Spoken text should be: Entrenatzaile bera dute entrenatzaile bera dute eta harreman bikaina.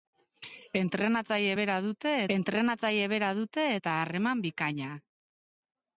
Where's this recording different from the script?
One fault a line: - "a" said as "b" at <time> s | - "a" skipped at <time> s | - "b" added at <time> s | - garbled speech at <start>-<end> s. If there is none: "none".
none